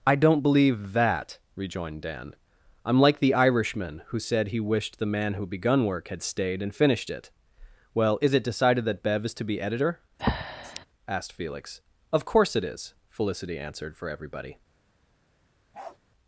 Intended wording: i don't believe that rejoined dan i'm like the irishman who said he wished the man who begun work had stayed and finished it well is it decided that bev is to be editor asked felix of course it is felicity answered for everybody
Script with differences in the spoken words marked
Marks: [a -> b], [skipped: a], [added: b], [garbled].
i don't believe that rejoined dan i'm like the irishman who said he wished the man who begun work had stayed and finished it well is it decided that bev is to be editor asked felix of course it is felicity answered for everybody